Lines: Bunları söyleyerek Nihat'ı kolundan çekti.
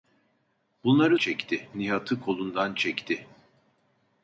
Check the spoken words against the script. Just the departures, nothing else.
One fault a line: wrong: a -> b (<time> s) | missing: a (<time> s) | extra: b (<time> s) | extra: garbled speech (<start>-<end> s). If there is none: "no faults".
wrong: söyleyerek -> çekti (1.2 s)